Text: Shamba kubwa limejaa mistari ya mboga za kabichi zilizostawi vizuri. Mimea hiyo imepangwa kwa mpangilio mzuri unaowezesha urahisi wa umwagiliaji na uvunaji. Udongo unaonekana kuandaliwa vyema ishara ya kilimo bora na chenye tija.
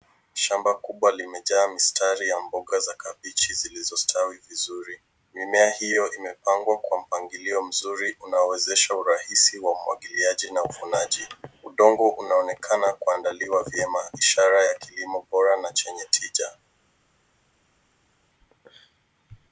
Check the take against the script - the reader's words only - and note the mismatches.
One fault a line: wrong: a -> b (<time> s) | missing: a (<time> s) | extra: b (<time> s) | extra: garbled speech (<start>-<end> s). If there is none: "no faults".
no faults